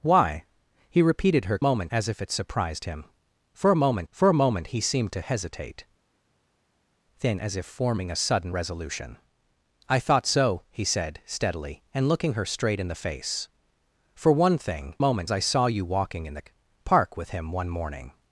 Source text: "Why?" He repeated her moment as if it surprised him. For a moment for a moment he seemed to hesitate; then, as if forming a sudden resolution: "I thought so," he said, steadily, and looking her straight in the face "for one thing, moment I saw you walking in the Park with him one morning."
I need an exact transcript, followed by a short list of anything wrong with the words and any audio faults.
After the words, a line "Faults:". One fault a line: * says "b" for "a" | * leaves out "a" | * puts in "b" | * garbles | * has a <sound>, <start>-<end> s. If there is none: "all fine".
"Why?" He repeated her moment as if it surprised him. For a moment for a moment he seemed to hesitate; then, as if forming a sudden resolution: "I thought so," he said, steadily, and looking her straight in the face "for one thing, moment I saw you walking in the Park with him one morning."
Faults:
all fine